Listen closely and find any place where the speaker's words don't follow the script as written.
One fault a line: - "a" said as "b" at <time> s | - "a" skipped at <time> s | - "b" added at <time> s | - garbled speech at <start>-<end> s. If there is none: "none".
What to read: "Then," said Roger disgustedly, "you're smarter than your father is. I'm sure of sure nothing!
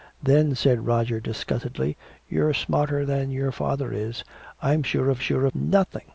none